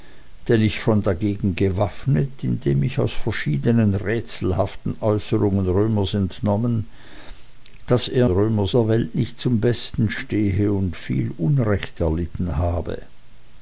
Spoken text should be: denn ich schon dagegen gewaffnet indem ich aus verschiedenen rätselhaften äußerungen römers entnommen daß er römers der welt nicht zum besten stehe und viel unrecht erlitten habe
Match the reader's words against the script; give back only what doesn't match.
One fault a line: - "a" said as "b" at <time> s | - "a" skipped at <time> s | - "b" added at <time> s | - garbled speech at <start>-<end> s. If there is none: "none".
none